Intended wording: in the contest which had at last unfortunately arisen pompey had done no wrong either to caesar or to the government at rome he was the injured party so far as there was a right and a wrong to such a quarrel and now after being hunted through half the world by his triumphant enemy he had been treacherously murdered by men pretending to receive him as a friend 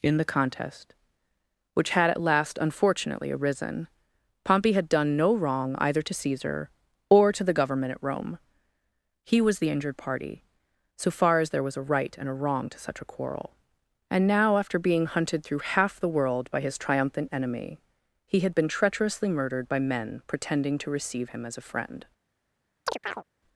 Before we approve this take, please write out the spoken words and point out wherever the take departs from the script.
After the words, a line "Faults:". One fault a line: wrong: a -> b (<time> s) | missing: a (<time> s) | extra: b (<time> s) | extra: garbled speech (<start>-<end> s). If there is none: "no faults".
in the contest which had at last unfortunately arisen pompey had done no wrong either to caesar or to the government at rome he was the injured party so far as there was a right and a wrong to such a quarrel and now after being hunted through half the world by his triumphant enemy he had been treacherously murdered by men pretending to receive him as a friend
Faults:
no faults